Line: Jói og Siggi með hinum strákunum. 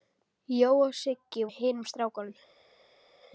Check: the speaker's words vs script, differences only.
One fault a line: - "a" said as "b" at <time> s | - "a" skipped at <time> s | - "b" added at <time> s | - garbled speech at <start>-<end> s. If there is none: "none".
none